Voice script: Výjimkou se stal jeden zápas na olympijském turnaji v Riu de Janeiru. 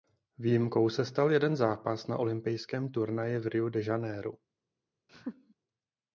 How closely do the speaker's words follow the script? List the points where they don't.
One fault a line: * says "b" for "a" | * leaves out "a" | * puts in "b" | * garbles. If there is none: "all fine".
all fine